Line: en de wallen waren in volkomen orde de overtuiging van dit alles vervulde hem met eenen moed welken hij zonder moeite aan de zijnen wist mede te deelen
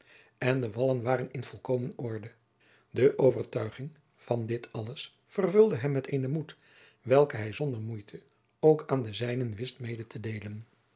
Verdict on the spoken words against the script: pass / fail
fail